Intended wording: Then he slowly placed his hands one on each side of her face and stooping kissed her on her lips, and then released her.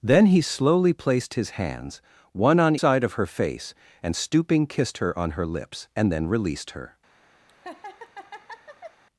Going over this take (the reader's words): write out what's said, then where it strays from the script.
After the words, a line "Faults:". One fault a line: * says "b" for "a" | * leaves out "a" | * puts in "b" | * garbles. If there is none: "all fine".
Then he slowly placed his hands one on side of her face and stooping kissed her on her lips, and then released her.
Faults:
* leaves out "each"